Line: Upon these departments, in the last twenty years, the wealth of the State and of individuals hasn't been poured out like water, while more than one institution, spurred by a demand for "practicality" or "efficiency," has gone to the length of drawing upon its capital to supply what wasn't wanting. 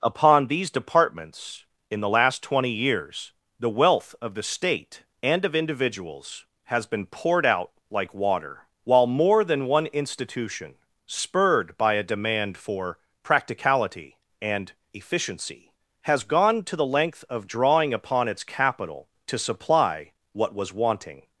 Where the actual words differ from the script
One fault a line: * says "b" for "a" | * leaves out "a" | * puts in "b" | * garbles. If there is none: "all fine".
* says "has" for "hasn't"
* says "and" for "or"
* says "was" for "wasn't"